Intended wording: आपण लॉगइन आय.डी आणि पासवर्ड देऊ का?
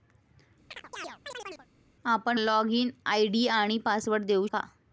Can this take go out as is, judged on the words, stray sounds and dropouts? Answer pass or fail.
fail